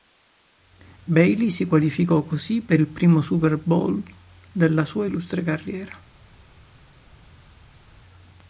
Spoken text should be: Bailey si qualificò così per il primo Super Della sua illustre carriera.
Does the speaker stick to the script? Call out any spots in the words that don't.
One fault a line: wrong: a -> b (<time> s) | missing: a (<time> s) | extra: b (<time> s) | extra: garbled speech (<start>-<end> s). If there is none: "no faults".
extra: Bowl (3.6 s)